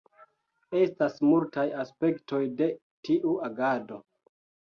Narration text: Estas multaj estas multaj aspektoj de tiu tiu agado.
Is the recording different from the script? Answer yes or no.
yes